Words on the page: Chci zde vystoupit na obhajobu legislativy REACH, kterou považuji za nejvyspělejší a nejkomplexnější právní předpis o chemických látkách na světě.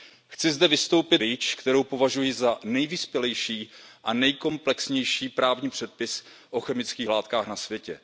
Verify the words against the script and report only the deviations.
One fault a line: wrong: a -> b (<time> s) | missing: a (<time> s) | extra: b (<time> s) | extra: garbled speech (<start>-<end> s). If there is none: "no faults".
missing: na obhajobu legislativy (1.2 s)